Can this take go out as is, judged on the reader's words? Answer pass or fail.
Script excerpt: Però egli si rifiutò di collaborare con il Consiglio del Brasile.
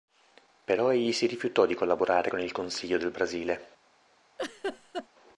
pass